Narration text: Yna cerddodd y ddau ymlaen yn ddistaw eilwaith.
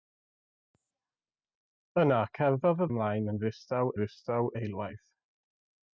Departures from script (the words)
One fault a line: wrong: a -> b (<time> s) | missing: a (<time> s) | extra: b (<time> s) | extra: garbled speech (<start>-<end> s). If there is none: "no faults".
missing: ddau (2.9 s)
extra: ddistaw (4.0 s)